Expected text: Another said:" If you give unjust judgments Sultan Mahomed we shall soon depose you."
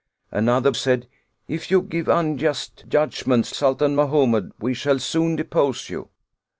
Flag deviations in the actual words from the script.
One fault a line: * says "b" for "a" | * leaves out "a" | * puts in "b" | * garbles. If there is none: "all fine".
all fine